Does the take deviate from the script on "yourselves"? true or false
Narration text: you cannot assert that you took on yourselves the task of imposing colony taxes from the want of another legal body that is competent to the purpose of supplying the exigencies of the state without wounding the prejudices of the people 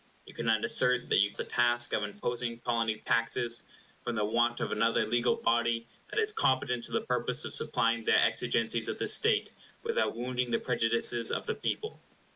true